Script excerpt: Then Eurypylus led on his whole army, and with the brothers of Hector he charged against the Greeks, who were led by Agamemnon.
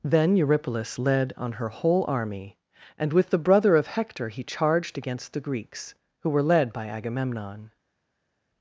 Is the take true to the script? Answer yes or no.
no